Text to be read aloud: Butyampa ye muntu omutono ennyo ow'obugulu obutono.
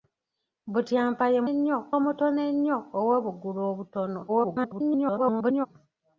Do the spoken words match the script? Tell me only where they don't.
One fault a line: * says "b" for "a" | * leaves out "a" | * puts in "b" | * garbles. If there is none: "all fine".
* says "ennyo" for "muntu"
* garbles